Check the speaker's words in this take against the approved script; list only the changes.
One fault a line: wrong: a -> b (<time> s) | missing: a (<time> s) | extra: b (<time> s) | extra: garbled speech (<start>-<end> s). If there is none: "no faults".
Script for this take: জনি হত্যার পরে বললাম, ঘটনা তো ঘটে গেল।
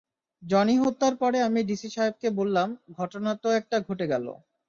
extra: আমি ডিসি সাহেবকে (1.4 s)
extra: একটা (3.6 s)